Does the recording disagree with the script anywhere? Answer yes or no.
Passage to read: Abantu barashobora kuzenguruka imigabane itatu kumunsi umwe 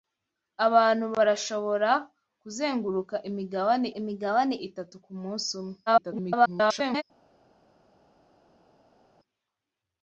yes